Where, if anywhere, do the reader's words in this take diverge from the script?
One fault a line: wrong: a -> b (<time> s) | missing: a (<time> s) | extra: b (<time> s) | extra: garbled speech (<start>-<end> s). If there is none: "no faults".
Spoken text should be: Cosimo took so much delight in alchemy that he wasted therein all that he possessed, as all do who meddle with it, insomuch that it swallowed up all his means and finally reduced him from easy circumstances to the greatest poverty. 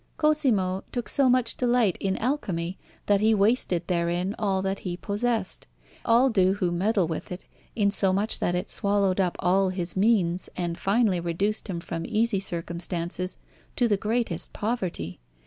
missing: as (5.7 s)